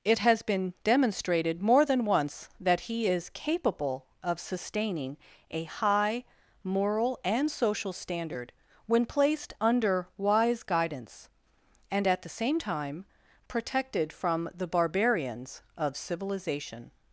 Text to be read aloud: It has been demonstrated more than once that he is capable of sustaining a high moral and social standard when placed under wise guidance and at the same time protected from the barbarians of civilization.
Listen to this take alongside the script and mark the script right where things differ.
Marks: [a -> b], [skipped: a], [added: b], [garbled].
It has been demonstrated more than once that he is capable of sustaining a high moral and social standard when placed under wise guidance and at the same time protected from the barbarians of civilization.